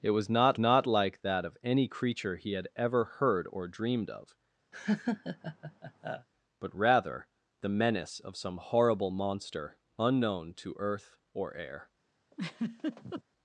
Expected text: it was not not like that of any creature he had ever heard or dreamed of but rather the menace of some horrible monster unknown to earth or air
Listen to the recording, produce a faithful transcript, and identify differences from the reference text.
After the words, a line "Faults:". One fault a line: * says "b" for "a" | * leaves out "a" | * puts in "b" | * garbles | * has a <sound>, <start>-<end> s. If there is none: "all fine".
it was not not like that of any creature he had ever heard or dreamed of but rather the menace of some horrible monster unknown to earth or air
Faults:
* has a laugh, 4.7-6.3 s
* has a laugh, 12.3-13.2 s